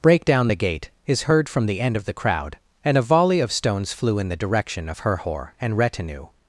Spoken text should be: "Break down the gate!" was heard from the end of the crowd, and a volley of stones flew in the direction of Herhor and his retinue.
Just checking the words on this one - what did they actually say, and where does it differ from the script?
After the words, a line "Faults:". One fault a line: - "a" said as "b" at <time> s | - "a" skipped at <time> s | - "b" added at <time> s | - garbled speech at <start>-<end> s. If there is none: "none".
"Break down the gate!" is heard from the end of the crowd, and a volley of stones flew in the direction of Herhor and retinue.
Faults:
- "was" said as "is" at 1.1 s
- "his" skipped at 5.8 s